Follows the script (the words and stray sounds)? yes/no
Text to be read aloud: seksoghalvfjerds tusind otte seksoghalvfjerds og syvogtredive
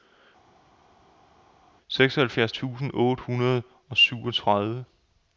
no